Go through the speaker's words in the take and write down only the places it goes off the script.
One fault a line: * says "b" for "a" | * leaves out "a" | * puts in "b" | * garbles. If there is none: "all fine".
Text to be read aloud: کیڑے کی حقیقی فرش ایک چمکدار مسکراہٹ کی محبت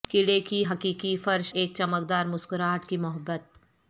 all fine